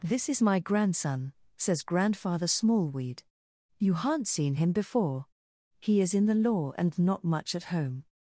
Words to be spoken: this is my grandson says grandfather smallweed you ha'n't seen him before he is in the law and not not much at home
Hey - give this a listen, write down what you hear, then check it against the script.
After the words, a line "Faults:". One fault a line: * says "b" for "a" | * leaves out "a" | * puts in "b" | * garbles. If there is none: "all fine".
this is my grandson says grandfather smallweed you ha'n't seen him before he is in the law and not much at home
Faults:
* leaves out "not"